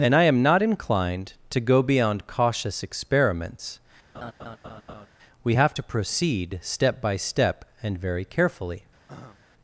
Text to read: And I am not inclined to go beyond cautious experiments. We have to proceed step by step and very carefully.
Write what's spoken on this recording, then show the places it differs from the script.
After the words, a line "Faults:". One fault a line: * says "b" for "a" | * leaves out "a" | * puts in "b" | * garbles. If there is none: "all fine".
And I am not inclined to go beyond cautious experiments. We have to proceed step by step and very carefully.
Faults:
all fine